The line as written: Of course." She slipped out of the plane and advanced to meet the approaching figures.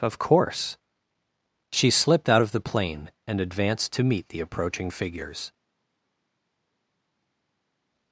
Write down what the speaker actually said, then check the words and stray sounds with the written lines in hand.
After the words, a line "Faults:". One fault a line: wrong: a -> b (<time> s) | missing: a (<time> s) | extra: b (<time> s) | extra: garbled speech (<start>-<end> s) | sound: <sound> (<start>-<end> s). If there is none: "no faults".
Of course." She slipped out of the plane and advanced to meet the approaching figures.
Faults:
no faults